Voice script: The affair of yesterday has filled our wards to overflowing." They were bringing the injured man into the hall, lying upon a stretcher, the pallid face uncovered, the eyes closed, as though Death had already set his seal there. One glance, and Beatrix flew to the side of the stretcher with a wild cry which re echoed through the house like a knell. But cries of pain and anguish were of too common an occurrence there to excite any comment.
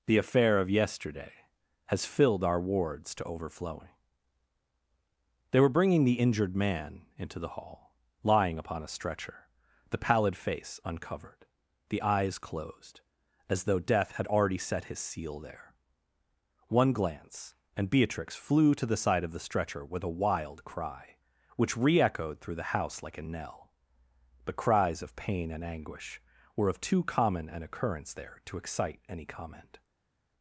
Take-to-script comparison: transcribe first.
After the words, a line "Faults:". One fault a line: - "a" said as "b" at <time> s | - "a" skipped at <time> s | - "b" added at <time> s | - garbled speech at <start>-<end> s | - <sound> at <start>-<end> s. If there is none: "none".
The affair of yesterday has filled our wards to overflowing." They were bringing the injured man into the hall, lying upon a stretcher, the pallid face uncovered, the eyes closed, as though Death had already set his seal there. One glance, and Beatrix flew to the side of the stretcher with a wild cry which re echoed through the house like a knell. But cries of pain and anguish were of too common an occurrence there to excite any comment.
Faults:
none